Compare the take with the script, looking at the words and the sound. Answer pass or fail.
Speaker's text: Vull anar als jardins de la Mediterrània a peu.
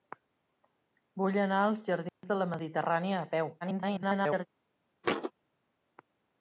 fail